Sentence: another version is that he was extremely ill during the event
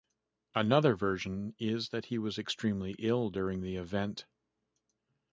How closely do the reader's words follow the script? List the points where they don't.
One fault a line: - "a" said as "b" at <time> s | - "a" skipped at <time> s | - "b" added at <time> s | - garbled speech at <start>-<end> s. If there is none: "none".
none